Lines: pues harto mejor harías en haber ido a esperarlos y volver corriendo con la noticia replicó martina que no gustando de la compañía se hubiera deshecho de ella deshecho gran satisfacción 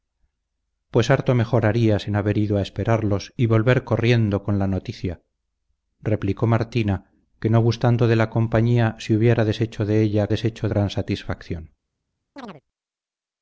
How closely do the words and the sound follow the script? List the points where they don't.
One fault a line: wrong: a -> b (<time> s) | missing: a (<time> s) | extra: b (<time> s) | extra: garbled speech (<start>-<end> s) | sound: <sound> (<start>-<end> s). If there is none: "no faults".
sound: chirp (12.4-12.6 s)